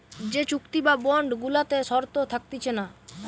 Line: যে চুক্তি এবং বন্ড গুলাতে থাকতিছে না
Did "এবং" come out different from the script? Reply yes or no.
yes